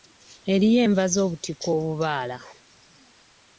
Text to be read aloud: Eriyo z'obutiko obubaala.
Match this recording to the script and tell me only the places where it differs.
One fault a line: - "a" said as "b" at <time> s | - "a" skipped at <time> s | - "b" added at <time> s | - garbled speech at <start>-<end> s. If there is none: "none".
- "enva" added at 0.8 s